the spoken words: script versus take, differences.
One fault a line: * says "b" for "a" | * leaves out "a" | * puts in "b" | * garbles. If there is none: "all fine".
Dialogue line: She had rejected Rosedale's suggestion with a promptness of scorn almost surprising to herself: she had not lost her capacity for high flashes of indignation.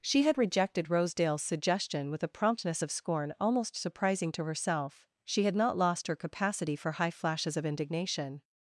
all fine